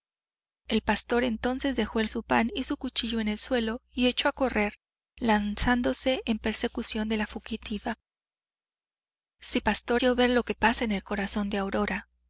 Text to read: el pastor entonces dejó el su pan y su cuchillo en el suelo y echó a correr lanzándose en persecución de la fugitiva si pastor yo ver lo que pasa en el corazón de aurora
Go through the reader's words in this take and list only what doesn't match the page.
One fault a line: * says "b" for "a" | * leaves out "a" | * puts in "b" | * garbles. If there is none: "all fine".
all fine